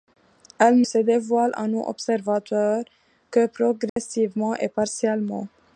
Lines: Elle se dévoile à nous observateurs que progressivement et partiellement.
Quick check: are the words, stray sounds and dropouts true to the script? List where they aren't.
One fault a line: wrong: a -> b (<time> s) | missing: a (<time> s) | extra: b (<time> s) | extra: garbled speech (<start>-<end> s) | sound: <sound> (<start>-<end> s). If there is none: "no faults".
sound: dropout (3.9-4.0 s)